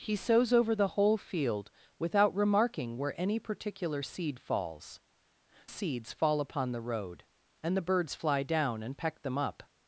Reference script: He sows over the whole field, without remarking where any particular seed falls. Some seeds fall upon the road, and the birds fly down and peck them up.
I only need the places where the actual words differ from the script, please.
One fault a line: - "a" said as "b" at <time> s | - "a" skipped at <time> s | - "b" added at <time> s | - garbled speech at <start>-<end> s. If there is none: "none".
- "Some" skipped at 5.0 s